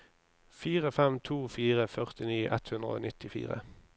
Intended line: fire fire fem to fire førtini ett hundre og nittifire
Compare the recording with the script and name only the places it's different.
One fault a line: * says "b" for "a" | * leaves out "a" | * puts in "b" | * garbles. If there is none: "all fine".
* leaves out "fire"